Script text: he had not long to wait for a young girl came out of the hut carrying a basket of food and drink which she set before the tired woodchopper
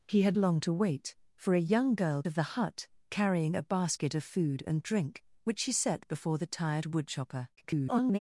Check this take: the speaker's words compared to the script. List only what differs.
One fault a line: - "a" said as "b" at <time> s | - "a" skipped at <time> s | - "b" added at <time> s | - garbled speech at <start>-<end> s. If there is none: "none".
- "not" skipped at 0.4 s
- "came out" skipped at 2.2 s
- garbled speech at 7.6-8.2 s